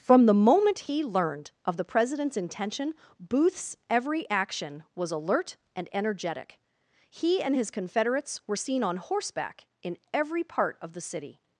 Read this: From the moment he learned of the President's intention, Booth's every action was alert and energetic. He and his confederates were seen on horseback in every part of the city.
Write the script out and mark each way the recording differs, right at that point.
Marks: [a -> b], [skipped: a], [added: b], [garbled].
From the moment he learned of the President's intention, Booth's every action was alert and energetic. He and his confederates were seen on horseback in every part of the city.